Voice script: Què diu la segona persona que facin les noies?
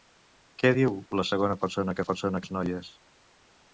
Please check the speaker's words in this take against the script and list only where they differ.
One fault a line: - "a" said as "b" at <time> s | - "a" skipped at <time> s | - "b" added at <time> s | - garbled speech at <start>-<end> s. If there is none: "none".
- "facin" said as "persona" at 2.1 s